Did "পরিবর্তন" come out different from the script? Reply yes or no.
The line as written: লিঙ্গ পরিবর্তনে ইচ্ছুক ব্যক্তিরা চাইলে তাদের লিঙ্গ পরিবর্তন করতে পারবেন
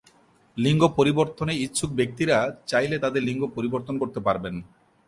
no